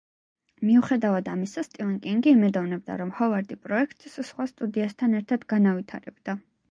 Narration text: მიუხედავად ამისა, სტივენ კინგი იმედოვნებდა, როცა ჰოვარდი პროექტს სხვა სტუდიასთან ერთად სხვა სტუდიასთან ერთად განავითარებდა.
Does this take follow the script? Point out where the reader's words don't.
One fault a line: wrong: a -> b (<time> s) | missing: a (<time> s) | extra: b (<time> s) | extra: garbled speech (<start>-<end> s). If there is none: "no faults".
wrong: როცა -> რომ (3.0 s)
missing: სხვა სტუდიასთან ერთად (5.5 s)